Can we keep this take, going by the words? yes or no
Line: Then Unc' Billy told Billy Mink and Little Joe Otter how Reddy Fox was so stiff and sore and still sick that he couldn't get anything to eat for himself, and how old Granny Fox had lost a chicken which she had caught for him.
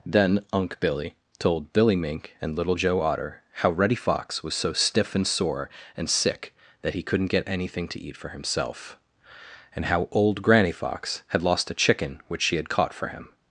no